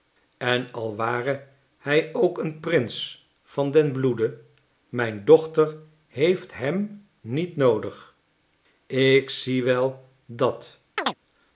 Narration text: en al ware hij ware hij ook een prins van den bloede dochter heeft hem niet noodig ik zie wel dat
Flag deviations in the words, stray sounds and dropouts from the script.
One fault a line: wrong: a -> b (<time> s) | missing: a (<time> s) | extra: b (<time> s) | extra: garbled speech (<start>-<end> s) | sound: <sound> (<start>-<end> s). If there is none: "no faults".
missing: ware hij (2.1 s)
extra: mijn (4.9 s)
sound: chirp (11.0-11.2 s)